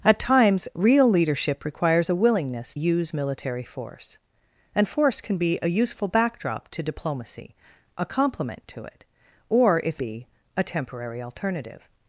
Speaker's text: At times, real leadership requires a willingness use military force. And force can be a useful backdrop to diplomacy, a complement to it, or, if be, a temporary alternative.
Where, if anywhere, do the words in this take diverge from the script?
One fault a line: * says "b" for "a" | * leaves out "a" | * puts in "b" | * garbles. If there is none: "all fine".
all fine